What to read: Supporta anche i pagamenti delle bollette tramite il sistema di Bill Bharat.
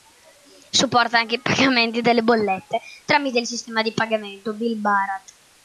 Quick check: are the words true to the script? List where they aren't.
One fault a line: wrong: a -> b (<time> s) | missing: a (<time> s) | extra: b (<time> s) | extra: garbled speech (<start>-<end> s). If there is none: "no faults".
extra: pagamento (3.9 s)